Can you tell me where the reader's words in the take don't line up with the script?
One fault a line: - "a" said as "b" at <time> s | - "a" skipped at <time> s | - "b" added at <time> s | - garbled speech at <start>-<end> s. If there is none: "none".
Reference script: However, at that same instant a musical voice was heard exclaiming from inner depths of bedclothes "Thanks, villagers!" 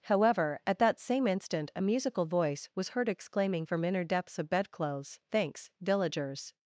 none